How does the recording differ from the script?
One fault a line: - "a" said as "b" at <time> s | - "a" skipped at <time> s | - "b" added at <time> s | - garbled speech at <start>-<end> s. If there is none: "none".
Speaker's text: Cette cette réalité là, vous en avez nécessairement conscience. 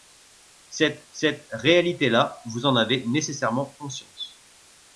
none